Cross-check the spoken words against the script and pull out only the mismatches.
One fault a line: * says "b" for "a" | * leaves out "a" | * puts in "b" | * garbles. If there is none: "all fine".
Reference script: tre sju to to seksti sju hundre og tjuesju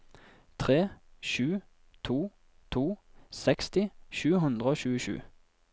all fine